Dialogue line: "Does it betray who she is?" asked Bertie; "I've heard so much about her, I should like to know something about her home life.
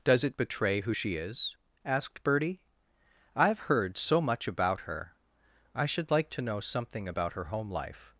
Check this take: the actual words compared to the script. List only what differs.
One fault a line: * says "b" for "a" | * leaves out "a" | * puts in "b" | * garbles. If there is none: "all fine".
all fine